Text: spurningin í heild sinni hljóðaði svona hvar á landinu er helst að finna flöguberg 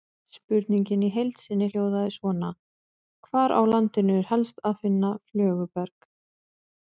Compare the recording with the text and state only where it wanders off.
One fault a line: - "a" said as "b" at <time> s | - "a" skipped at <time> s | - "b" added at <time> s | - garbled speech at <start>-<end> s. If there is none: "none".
none